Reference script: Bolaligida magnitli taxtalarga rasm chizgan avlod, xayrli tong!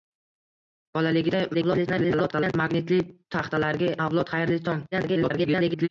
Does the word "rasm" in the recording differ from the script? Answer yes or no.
yes